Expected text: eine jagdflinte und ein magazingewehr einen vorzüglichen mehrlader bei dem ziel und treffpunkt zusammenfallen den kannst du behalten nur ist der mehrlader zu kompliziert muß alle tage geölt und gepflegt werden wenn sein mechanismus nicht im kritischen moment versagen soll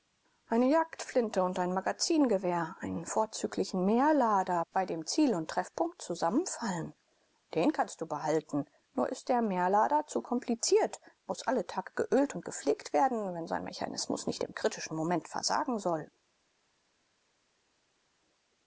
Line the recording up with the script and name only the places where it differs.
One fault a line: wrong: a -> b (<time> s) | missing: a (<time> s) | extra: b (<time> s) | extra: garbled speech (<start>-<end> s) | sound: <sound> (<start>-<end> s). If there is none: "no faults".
no faults